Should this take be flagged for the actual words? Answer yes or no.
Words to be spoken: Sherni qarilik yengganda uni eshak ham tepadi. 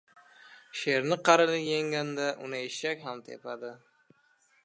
no